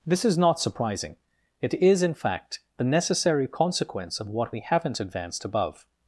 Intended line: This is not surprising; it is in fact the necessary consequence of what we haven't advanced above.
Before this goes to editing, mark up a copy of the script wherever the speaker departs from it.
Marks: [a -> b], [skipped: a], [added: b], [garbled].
This is not surprising; it is in fact the necessary consequence of what we haven't advanced above.